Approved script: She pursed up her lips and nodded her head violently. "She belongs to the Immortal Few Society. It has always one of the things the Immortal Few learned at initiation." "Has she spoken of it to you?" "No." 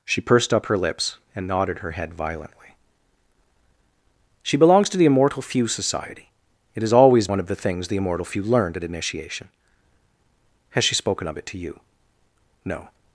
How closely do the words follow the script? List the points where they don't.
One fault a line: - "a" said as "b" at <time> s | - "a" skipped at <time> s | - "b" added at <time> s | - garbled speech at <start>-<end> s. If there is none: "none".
none